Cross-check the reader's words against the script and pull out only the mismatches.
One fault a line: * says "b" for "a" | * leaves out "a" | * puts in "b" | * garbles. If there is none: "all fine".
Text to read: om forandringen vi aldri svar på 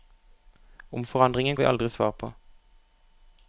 all fine